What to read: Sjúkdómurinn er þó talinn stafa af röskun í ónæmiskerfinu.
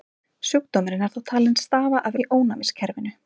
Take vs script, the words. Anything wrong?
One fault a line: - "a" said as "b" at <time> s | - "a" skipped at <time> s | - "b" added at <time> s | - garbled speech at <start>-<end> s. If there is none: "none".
- "röskun" skipped at 2.2 s